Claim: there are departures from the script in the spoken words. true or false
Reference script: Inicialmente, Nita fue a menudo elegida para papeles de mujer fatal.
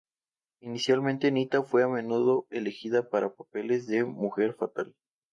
false